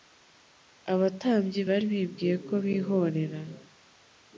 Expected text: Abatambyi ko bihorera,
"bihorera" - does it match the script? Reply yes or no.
yes